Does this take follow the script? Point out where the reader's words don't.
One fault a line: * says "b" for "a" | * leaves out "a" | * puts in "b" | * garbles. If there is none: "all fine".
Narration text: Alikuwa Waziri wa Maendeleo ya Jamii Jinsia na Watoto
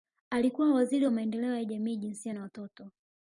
all fine